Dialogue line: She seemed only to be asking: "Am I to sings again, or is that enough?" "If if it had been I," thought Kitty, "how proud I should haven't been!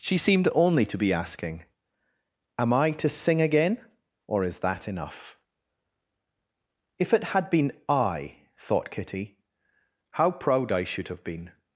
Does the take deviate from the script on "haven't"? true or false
true